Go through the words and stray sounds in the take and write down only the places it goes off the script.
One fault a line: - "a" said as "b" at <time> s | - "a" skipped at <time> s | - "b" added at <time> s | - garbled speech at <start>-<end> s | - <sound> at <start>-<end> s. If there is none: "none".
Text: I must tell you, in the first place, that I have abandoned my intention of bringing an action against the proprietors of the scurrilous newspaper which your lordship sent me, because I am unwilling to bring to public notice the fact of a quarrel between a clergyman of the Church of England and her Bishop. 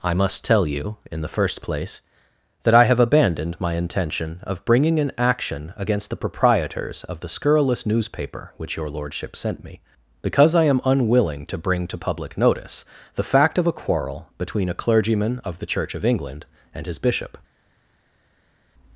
- "her" said as "his" at 16.9 s